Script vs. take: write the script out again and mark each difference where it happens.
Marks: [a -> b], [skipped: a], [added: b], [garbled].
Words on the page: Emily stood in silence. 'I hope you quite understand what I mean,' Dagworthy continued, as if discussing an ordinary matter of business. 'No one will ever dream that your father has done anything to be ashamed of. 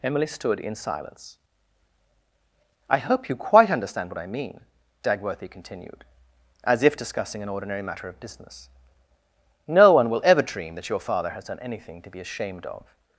Emily stood in silence. 'I hope you quite understand what I mean,' Dagworthy continued, as if discussing an ordinary matter of business. 'No one will ever dream that your father has done anything to be ashamed of.